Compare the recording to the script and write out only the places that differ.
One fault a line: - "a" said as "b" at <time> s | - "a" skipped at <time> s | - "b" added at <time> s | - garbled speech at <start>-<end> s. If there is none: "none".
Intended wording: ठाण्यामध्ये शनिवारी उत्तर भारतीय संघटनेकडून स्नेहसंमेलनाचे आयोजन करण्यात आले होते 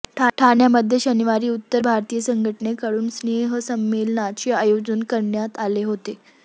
none